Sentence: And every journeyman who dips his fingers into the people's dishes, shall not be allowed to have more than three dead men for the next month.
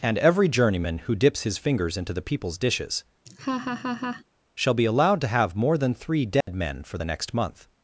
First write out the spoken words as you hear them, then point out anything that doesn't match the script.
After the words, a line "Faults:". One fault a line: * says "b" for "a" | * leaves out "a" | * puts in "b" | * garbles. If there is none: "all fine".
And every journeyman who dips his fingers into the people's dishes, shall be allowed to have more than three dead men for the next month.
Faults:
* leaves out "not"